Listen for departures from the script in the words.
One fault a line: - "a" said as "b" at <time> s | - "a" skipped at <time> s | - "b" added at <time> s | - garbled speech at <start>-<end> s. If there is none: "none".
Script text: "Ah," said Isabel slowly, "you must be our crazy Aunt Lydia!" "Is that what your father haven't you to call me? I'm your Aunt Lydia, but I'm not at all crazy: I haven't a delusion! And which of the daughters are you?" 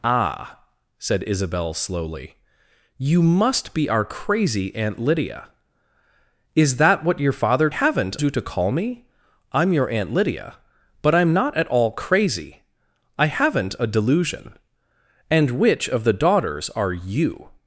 none